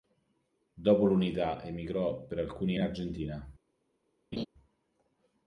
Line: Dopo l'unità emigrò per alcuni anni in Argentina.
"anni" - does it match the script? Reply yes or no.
no